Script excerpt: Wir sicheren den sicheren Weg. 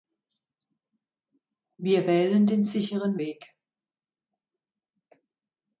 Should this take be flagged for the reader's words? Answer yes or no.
yes